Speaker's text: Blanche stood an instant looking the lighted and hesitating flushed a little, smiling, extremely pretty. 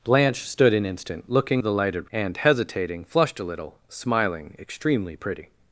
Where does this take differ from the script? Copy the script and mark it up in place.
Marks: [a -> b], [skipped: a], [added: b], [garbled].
Blanche stood an instant looking the lighted and hesitating flushed a little, smiling, extremely pretty.